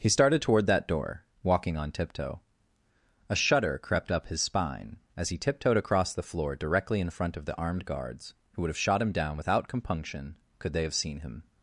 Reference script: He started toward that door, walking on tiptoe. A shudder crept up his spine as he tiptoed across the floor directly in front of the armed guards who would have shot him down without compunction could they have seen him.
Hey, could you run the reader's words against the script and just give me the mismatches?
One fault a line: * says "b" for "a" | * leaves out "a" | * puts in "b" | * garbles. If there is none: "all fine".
all fine